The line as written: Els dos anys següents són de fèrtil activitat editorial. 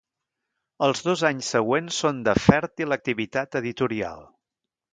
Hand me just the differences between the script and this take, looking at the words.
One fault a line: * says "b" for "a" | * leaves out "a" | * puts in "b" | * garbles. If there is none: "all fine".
all fine